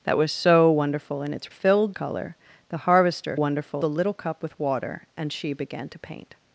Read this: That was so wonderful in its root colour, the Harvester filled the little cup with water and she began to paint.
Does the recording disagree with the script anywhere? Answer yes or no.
yes